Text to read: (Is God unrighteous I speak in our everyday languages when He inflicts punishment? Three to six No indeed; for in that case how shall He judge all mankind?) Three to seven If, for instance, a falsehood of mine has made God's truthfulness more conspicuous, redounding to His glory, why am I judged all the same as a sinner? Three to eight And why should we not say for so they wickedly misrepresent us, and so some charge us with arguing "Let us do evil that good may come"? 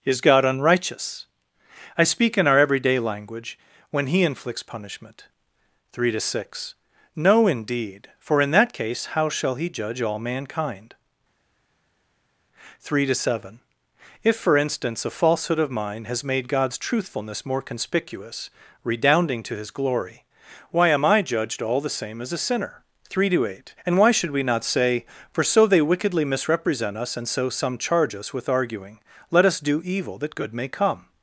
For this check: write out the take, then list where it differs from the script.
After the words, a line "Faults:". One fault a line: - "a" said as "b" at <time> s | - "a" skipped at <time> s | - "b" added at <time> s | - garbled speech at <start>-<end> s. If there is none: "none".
(Is God unrighteous I speak in our everyday language when He inflicts punishment? Three to six No indeed; for in that case how shall He judge all mankind?) Three to seven If, for instance, a falsehood of mine has made God's truthfulness more conspicuous, redounding to His glory, why am I judged all the same as a sinner? Three to eight And why should we not say for so they wickedly misrepresent us, and so some charge us with arguing "Let us do evil that good may come"?
Faults:
- "languages" said as "language" at 3.0 s